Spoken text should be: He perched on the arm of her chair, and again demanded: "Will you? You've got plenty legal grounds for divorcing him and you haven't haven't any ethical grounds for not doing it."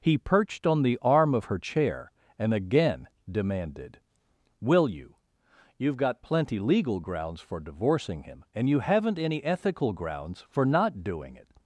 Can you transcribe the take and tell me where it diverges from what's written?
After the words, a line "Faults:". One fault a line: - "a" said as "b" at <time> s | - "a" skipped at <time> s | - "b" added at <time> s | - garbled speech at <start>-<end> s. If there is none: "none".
He perched on the arm of her chair, and again demanded: "Will you? You've got plenty legal grounds for divorcing him and you haven't any ethical grounds for not doing it."
Faults:
- "haven't" skipped at 9.2 s